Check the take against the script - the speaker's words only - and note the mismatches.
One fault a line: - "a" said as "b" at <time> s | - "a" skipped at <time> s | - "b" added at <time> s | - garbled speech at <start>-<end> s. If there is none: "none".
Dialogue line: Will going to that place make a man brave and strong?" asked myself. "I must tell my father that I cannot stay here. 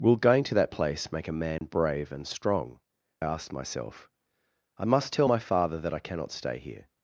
none